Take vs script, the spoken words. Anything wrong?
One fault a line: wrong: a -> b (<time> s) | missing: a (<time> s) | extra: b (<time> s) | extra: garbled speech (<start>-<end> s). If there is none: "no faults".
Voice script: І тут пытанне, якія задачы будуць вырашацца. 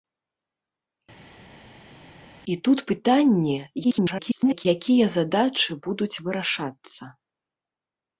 extra: garbled speech (3.8-4.7 s)